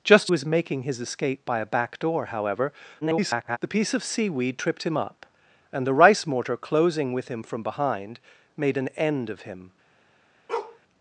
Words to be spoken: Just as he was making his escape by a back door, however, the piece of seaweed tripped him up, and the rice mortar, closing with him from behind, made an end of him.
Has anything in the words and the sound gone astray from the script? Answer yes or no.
yes